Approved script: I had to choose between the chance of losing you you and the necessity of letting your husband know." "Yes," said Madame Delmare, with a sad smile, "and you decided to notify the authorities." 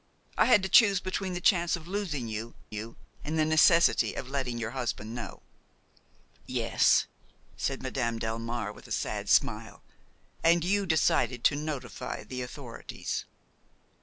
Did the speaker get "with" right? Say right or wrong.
right